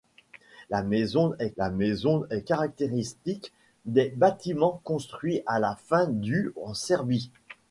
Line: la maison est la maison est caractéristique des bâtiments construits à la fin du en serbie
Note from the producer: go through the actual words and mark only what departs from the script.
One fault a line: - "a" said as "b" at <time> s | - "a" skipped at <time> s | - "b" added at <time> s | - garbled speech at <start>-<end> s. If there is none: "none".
none